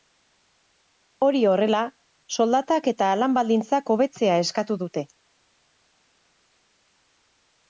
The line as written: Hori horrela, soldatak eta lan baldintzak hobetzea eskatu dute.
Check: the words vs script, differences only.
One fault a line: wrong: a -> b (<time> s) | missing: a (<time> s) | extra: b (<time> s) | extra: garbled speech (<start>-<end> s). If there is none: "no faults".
no faults